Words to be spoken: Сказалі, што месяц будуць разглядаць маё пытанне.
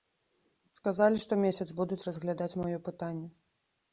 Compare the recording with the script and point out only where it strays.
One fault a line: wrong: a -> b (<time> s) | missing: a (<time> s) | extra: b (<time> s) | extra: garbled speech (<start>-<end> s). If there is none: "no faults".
no faults